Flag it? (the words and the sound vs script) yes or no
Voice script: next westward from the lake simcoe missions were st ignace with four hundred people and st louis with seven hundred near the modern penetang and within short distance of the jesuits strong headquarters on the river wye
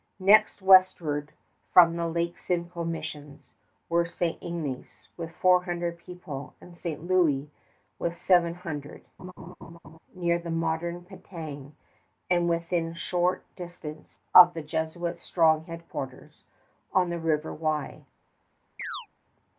yes